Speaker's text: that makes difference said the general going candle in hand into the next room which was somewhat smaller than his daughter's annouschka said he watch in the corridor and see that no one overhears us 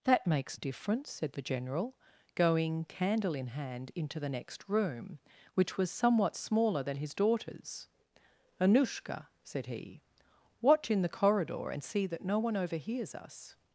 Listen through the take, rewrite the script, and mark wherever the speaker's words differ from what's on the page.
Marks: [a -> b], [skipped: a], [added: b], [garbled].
that makes difference said the general going candle in hand into the next room which was somewhat smaller than his daughter's annouschka said he watch in the corridor and see that no one overhears us